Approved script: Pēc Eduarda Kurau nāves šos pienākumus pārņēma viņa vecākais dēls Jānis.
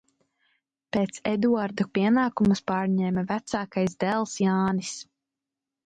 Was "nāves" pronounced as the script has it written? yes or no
no